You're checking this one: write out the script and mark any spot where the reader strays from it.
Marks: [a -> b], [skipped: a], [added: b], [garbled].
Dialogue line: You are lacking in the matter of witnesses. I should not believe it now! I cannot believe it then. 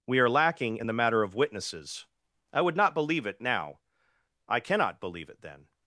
[You -> We] are lacking in the matter of witnesses. I [should -> would] not believe it now! I cannot believe it then.